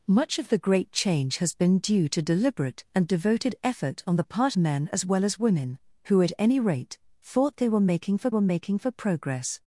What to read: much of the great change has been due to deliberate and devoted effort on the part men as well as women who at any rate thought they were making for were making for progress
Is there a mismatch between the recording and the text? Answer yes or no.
no